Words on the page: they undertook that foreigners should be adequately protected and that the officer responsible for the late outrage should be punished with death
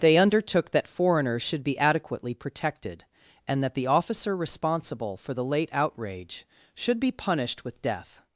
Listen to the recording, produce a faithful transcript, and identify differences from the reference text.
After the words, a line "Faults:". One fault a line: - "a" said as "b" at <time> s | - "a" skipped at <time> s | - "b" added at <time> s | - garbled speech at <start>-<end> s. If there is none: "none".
they undertook that foreigners should be adequately protected and that the officer responsible for the late outrage should be punished with death
Faults:
none